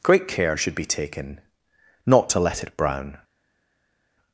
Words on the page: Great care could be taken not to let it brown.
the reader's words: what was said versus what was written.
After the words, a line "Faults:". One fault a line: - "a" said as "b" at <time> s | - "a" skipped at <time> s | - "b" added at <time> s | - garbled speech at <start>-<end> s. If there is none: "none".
Great care should be taken not to let it brown.
Faults:
- "could" said as "should" at 0.6 s